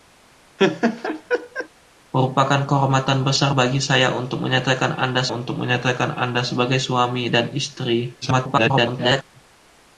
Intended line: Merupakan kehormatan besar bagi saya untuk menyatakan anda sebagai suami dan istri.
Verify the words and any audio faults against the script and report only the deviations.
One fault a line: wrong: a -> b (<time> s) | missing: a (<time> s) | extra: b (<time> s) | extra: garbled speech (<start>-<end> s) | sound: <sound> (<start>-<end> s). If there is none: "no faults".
sound: laugh (0.6-1.7 s)
extra: untuk menyatakan anda (5.3 s)
extra: garbled speech (8.2-9.2 s)